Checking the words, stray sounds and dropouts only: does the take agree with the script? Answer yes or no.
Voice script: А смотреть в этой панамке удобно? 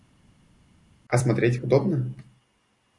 no